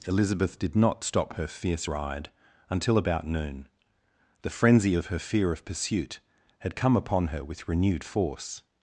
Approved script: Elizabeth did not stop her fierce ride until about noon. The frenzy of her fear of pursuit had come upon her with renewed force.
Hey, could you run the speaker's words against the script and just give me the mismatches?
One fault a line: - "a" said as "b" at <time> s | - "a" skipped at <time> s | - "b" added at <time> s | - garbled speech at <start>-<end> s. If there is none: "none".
none